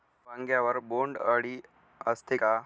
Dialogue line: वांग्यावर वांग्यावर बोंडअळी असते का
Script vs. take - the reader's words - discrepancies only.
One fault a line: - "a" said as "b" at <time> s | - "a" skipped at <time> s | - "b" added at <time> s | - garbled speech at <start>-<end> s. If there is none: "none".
- "वांग्यावर" skipped at 0.8 s